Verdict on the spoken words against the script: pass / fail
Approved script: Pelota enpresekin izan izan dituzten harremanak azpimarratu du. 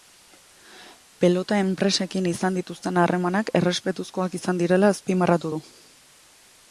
fail